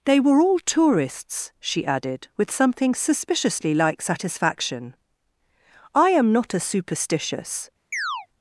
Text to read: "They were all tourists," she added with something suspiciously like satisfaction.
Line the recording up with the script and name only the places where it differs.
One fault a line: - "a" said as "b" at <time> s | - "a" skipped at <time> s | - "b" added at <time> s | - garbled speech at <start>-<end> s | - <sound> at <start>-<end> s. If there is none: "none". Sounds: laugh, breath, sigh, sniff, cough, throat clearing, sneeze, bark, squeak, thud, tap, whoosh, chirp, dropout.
- "I am not a superstitious" added at 5.9 s
- chirp at 7.9-8.3 s